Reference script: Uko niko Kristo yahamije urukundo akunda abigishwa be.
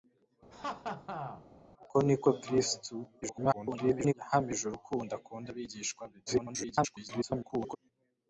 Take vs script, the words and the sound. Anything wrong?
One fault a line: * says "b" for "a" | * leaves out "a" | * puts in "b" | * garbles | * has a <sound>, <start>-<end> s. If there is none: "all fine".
* has a laugh, 0.5-1.5 s
* garbles
* garbles